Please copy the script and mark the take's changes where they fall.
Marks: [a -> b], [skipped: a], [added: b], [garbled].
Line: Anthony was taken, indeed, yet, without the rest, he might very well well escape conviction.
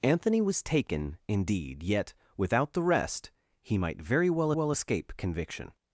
Anthony was taken, indeed, yet, without the rest, he might very well well escape conviction.